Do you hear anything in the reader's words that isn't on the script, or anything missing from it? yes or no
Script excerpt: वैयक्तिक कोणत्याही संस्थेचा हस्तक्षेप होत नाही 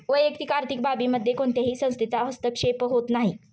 yes